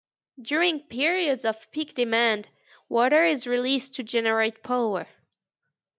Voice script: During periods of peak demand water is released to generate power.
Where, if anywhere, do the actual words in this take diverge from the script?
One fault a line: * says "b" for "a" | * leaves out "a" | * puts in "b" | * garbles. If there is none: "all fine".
all fine